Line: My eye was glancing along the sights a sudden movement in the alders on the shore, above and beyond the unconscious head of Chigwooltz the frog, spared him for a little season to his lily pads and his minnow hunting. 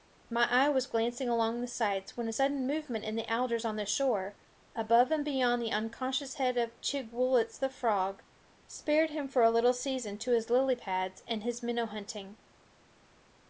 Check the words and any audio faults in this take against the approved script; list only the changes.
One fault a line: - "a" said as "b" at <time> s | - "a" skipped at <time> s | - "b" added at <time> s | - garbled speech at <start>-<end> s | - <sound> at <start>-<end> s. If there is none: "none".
- "when" added at 2.2 s